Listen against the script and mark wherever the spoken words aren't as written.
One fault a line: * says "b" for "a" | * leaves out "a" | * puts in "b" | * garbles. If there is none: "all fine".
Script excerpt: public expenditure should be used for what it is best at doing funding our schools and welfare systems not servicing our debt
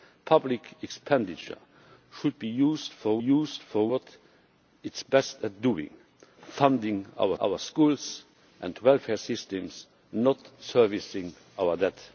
* puts in "used for"
* puts in "our"